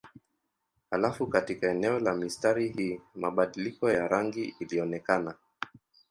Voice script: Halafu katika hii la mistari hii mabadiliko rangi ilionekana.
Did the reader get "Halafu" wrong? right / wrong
right